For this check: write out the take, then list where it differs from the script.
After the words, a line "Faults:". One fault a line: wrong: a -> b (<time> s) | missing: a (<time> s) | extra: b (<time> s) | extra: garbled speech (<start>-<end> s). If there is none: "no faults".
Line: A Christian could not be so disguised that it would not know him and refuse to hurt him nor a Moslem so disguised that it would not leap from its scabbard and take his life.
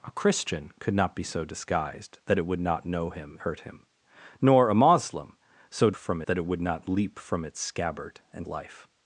A Christian could not be so disguised that it would not know him hurt him nor a Moslem so from that it would not leap from its scabbard and life.
Faults:
missing: and refuse to (3.4 s)
wrong: disguised -> from (6.0 s)
missing: take his (8.5 s)